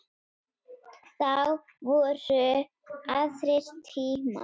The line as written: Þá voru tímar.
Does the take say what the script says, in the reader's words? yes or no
no